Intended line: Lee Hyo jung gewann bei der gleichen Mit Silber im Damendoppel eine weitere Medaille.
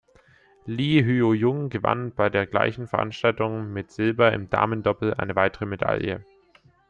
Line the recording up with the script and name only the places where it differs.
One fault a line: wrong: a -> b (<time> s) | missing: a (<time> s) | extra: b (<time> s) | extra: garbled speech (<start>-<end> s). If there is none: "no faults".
extra: Veranstaltung (2.9 s)